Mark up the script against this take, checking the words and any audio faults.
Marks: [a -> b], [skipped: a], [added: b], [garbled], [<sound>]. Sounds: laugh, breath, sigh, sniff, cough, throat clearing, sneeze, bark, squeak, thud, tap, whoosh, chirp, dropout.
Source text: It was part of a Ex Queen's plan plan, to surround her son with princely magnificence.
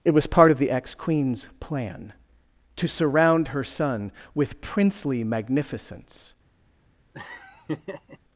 It was part of [a -> the] Ex Queen's plan [skipped: plan,] to surround her son with princely magnificence. [laugh]